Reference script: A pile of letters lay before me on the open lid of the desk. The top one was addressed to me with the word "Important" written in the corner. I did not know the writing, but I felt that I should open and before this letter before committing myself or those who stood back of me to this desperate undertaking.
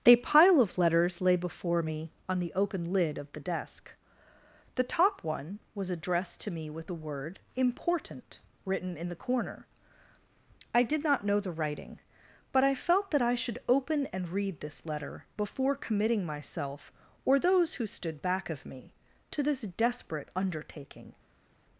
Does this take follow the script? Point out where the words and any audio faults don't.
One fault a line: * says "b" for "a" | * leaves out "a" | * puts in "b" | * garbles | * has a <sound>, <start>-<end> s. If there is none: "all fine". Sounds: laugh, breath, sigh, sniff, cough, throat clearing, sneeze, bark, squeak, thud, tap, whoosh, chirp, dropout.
* says "read" for "before"